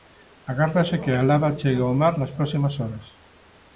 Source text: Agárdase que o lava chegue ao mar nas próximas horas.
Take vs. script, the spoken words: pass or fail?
fail